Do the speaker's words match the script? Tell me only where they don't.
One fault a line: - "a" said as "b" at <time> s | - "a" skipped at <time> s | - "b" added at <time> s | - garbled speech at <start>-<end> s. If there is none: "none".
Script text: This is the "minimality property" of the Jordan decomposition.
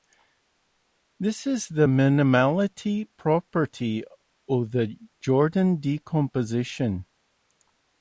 none